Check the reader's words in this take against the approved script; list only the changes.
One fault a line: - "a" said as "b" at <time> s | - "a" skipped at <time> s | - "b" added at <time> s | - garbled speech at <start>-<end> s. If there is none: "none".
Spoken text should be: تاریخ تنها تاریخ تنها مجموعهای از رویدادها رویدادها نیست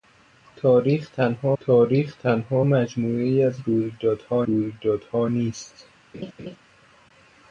none